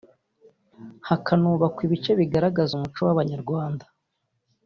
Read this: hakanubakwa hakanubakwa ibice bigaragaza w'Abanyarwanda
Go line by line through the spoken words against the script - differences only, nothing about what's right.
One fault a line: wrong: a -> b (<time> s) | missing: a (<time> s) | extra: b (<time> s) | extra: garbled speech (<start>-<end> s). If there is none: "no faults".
missing: hakanubakwa (1.8 s)
extra: umuco (2.7 s)